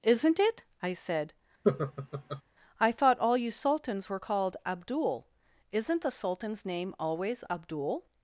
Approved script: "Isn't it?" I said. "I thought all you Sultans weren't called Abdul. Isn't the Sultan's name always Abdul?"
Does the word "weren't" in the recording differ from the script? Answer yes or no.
yes